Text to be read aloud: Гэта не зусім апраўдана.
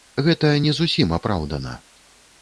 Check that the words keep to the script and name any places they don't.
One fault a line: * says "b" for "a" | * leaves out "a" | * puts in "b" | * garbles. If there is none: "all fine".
all fine